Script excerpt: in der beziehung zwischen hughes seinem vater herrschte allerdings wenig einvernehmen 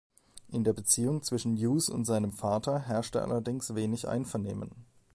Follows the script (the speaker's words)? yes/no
no